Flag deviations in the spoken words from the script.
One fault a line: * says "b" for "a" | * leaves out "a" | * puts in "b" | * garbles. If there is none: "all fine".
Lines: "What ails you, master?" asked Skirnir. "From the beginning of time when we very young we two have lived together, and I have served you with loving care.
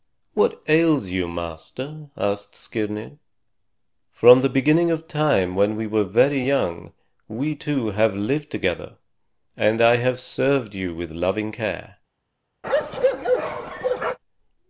* puts in "were"